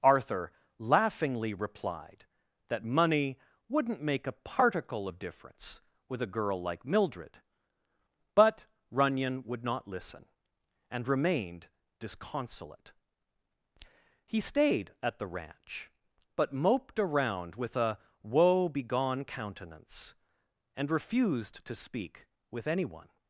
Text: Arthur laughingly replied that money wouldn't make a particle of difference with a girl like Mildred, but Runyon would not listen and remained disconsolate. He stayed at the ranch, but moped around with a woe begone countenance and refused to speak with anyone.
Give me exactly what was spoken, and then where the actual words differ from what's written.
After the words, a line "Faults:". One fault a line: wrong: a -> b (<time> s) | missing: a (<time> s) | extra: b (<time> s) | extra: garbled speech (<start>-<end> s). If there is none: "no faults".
Arthur laughingly replied that money wouldn't make a particle of difference with a girl like Mildred, but Runyon would not listen and remained disconsolate. He stayed at the ranch, but moped around with a woe begone countenance and refused to speak with anyone.
Faults:
no faults